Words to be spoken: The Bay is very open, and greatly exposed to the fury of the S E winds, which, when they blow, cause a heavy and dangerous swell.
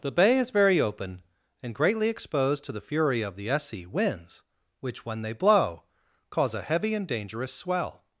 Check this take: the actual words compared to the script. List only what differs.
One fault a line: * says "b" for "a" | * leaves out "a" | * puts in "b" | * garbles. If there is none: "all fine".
all fine